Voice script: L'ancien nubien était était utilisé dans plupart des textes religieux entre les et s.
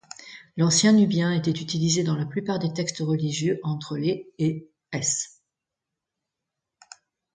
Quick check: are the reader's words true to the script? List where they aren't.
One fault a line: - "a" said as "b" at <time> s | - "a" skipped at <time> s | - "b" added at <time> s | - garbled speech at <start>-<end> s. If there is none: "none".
- "était" skipped at 1.5 s
- "la" added at 2.1 s